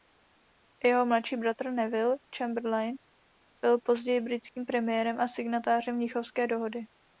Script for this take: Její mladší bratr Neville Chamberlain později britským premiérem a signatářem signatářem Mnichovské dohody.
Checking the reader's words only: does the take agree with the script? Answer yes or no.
no